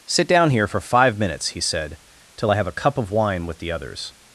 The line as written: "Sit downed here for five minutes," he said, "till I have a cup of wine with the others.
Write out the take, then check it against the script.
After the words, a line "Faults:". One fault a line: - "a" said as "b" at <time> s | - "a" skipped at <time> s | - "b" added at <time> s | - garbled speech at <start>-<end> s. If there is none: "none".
"Sit down here for five minutes," he said, "till I have a cup of wine with the others.
Faults:
- "downed" said as "down" at 0.3 s